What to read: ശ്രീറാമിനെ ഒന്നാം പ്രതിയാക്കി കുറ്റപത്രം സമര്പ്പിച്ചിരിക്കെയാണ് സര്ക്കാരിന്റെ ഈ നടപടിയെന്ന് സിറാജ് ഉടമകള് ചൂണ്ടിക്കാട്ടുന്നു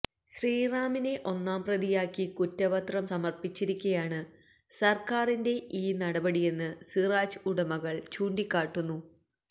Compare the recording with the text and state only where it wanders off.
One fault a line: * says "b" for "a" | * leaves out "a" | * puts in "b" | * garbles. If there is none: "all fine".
all fine